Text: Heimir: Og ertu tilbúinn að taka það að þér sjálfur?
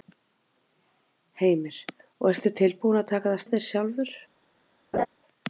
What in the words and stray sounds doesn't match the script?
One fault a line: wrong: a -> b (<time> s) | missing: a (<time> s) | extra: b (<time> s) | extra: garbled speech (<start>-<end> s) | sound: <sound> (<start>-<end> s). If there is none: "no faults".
sound: laugh (4.9-5.1 s)